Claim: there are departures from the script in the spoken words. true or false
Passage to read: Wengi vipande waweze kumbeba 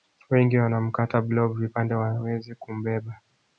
true